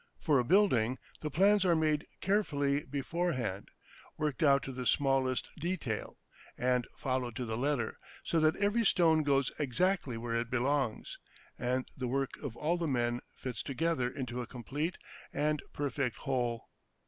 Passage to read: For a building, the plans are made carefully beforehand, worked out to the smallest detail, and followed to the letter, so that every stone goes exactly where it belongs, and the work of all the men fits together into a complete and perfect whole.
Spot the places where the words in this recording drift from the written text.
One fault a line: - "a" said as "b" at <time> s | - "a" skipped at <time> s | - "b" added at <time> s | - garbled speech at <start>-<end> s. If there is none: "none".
none